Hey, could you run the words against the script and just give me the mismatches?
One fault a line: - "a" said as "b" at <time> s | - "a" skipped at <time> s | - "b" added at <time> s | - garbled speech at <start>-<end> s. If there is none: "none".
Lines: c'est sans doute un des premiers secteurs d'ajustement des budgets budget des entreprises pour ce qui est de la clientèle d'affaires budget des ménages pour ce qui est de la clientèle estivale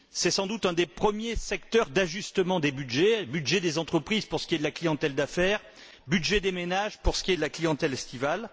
none